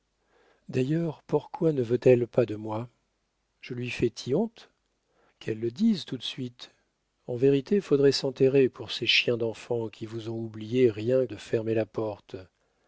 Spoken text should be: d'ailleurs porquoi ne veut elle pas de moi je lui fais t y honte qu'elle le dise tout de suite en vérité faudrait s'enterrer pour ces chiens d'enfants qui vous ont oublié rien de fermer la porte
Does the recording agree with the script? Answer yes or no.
yes